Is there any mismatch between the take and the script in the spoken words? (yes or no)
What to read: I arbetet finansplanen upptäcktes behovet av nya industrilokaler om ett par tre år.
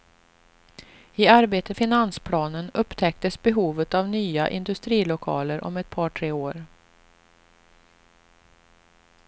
no